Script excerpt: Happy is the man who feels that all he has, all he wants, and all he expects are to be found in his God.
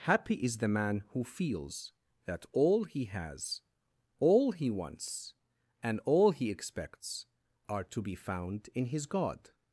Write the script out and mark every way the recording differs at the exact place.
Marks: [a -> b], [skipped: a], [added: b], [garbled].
Happy is the man who feels that all he has, all he wants, and all he expects are to be found in his God.